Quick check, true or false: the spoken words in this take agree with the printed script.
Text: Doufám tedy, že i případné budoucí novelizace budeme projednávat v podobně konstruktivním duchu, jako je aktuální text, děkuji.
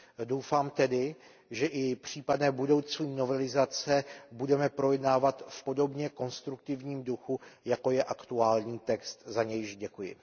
false